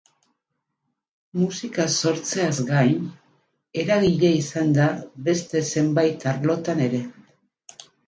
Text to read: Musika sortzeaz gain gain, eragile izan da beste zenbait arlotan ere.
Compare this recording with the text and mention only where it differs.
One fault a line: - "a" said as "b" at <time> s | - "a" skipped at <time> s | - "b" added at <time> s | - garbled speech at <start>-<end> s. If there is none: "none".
- "gain" skipped at 3.0 s